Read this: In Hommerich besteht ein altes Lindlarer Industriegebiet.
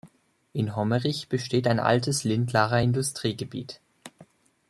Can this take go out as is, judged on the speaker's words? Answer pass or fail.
pass